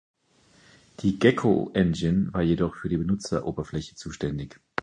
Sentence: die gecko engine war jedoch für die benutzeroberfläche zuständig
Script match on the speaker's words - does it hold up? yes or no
yes